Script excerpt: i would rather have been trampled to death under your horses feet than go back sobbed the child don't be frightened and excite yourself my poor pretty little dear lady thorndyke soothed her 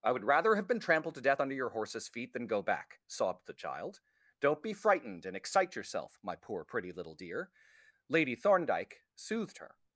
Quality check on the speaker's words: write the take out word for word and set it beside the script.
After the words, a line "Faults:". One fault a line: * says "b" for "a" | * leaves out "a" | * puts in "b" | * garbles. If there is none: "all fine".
i would rather have been trampled to death under your horses feet than go back sobbed the child don't be frightened and excite yourself my poor pretty little dear lady thorndyke soothed her
Faults:
all fine